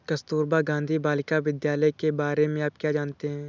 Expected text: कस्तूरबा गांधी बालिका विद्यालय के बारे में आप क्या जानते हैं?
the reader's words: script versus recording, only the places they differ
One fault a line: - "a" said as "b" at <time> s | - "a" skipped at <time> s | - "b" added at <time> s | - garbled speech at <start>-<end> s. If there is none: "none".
none